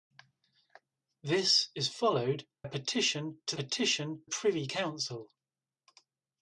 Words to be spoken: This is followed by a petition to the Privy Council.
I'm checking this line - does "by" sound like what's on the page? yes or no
no